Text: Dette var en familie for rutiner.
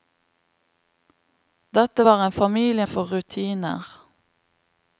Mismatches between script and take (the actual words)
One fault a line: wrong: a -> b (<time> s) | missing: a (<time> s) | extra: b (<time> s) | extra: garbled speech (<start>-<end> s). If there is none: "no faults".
no faults